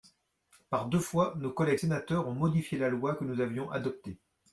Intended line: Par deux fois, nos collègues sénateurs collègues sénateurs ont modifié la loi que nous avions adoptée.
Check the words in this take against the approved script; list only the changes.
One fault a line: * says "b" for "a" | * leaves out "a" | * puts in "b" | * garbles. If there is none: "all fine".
* leaves out "collègues sénateurs"